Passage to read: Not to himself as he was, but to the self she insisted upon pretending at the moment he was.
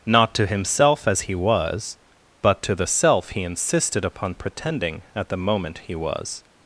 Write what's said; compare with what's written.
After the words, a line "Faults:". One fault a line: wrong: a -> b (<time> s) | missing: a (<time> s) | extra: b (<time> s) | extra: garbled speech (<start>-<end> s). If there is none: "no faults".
Not to himself as he was, but to the self he insisted upon pretending at the moment he was.
Faults:
wrong: she -> he (3.3 s)